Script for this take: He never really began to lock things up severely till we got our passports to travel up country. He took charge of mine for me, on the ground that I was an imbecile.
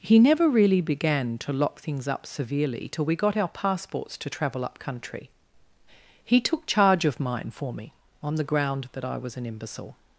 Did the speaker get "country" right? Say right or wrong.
right